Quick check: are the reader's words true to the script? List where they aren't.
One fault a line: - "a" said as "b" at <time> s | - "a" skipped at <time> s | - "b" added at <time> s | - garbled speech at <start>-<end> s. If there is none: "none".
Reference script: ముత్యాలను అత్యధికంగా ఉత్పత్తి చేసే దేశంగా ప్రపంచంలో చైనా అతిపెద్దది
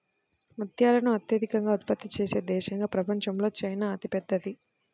none